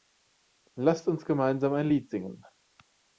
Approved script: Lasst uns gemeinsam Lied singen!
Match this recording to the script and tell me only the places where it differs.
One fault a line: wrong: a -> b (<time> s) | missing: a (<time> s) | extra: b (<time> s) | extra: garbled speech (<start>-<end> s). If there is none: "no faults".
extra: ein (1.7 s)